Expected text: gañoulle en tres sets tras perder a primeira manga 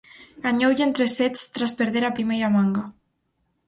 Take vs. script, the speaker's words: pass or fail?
pass